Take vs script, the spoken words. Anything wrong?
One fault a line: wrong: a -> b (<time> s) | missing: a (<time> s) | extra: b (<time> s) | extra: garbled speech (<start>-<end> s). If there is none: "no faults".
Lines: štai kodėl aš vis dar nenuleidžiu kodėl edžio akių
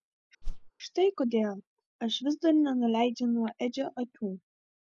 wrong: kodėl -> nuo (3.3 s)